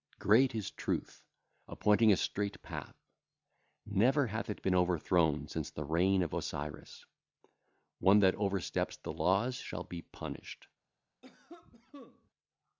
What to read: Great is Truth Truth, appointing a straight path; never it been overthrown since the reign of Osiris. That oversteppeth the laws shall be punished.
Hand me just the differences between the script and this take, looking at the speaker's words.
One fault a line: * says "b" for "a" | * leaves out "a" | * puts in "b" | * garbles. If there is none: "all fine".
* leaves out "Truth"
* puts in "hath"
* puts in "One"